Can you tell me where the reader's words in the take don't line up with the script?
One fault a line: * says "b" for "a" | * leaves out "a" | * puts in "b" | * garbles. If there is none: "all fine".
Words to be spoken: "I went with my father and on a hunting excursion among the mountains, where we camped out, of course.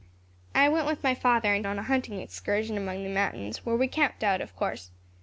all fine